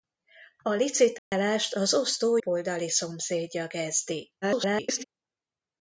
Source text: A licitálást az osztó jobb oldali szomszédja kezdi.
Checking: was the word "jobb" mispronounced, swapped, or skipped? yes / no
yes